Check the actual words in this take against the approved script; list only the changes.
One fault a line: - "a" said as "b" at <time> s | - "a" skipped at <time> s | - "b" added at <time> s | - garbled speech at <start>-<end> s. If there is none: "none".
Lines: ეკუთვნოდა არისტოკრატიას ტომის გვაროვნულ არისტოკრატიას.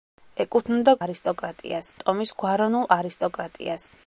none